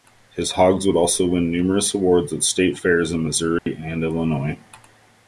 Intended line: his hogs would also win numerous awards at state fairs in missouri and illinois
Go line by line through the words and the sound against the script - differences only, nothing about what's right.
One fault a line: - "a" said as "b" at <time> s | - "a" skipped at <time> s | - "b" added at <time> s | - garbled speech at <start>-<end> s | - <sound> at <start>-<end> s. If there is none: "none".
- dropout at 3.6-3.7 s